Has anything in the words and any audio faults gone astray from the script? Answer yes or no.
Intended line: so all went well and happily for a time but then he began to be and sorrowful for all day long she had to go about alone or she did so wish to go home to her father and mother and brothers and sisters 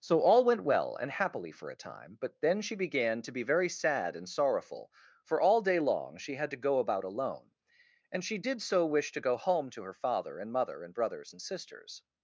yes